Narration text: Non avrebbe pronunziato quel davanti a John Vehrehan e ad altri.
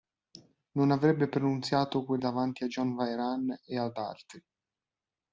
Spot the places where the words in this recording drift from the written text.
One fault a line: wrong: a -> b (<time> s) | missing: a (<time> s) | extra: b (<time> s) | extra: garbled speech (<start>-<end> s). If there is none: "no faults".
no faults